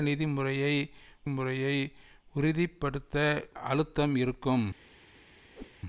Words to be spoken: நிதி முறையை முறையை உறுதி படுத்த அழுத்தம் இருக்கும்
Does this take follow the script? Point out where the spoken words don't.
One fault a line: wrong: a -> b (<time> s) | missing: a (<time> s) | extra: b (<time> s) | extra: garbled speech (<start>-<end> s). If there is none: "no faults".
no faults